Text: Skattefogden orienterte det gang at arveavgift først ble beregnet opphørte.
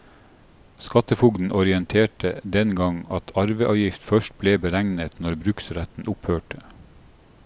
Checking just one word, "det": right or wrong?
wrong